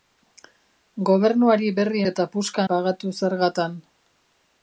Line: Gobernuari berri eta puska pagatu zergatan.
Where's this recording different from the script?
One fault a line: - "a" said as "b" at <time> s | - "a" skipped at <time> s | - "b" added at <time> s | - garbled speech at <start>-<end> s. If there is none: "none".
none